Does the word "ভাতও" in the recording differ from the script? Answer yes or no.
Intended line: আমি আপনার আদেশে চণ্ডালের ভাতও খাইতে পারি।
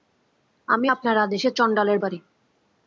yes